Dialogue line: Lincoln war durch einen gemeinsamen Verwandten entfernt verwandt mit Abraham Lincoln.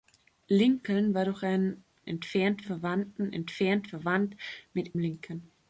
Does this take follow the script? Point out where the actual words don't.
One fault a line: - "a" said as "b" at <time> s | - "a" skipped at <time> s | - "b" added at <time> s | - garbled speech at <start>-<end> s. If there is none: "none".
- "gemeinsamen" said as "entfernt" at 2.1 s
- "Abraham" skipped at 4.9 s